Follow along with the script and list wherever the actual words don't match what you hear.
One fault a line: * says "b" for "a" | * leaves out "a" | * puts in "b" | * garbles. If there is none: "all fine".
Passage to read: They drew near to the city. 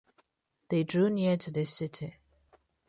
all fine